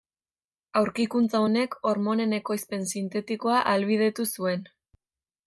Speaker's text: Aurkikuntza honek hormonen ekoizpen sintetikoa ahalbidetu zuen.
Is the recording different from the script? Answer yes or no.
no